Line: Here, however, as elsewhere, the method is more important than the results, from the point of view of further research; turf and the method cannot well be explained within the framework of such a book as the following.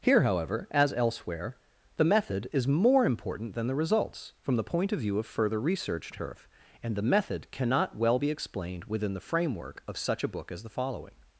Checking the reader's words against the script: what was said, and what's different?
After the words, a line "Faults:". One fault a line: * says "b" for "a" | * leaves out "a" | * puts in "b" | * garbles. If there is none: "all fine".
Here, however, as elsewhere, the method is more important than the results, from the point of view of further research; turf and the method cannot well be explained within the framework of such a book as the following.
Faults:
all fine